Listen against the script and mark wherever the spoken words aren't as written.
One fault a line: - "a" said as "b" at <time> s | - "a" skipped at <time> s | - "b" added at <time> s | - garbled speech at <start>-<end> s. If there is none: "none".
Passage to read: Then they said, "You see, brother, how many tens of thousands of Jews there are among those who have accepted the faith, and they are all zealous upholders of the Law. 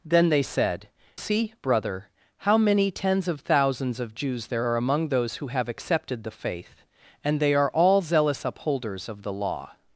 - "You" skipped at 0.9 s